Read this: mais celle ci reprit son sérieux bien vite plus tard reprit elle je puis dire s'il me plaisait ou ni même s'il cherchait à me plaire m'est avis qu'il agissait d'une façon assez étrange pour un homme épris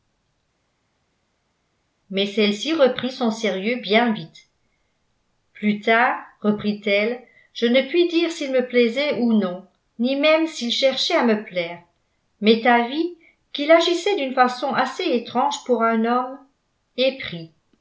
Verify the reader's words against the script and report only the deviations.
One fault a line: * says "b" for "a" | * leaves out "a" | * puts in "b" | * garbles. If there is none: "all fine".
* puts in "ne"
* puts in "non"